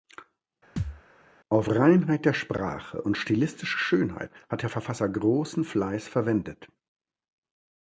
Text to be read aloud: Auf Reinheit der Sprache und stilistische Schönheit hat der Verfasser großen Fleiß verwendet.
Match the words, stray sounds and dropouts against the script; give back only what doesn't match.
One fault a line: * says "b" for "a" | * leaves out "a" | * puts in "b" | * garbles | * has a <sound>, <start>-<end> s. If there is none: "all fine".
* has a thud, 0.8-1.0 s